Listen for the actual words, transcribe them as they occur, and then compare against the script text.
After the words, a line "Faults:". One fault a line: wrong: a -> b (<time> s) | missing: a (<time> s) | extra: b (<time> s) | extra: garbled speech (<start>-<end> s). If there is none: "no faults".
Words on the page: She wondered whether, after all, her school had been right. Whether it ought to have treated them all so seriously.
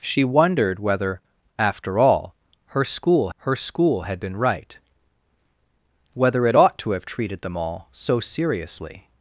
She wondered whether, after all, her school her school had been right. Whether it ought to have treated them all so seriously.
Faults:
extra: her school (3.4 s)